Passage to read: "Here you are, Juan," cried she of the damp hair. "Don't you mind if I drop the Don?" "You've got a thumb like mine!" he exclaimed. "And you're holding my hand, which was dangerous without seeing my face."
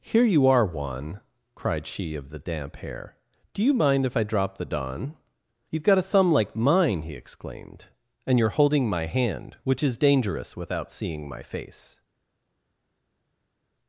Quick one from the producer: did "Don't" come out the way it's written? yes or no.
no